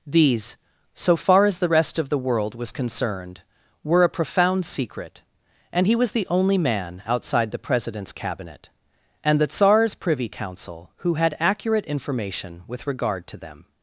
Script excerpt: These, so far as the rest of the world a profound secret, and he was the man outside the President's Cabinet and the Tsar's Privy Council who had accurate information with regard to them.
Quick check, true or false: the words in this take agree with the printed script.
false